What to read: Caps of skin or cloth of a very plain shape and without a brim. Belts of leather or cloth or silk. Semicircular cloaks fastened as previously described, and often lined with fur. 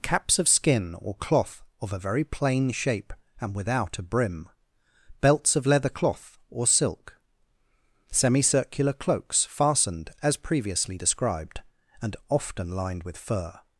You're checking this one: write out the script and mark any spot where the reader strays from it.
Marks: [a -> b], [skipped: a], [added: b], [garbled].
Caps of skin or cloth of a very plain shape and without a brim. Belts of leather [skipped: or] cloth or silk. Semicircular cloaks fastened as previously described, and often lined with fur.